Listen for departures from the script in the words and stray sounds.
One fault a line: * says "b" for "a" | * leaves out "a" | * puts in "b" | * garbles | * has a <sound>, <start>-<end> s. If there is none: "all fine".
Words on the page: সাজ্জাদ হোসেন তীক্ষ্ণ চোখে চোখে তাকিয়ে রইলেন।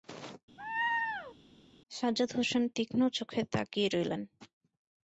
* has a laugh, 0.6-1.4 s
* leaves out "চোখে"